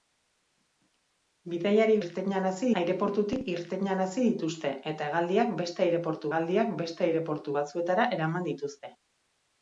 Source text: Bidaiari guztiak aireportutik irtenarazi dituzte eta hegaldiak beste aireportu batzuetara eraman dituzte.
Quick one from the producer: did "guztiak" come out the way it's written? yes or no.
no